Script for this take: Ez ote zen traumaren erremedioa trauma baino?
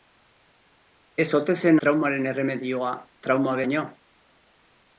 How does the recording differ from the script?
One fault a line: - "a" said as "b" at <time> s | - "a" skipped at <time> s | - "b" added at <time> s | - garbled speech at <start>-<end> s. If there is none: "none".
none